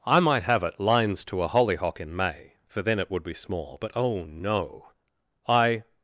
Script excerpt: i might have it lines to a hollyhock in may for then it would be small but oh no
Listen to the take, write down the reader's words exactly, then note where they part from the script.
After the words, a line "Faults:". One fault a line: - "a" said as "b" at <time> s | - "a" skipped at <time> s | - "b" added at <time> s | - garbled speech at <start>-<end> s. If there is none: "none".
i might have it lines to a hollyhock in may for then it would be small but oh no i
Faults:
- "i" added at 5.5 s